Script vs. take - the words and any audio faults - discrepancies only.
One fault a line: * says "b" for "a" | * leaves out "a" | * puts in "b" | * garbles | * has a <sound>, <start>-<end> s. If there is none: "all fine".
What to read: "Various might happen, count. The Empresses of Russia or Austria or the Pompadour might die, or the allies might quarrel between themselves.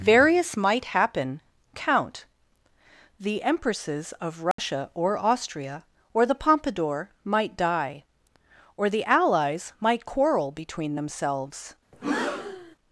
* has a dropout, 4.5-4.6 s
* has a breath, 11.9-12.8 s